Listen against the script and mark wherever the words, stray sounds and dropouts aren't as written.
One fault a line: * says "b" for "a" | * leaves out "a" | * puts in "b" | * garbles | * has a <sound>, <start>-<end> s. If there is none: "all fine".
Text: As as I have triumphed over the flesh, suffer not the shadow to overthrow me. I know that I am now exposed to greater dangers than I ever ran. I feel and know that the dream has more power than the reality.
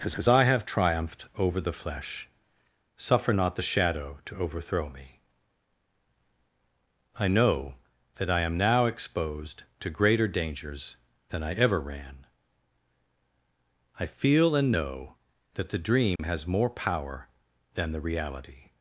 * has a dropout, 16.2-16.2 s